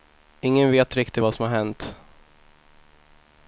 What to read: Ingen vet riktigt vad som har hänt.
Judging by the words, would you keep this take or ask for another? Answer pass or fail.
pass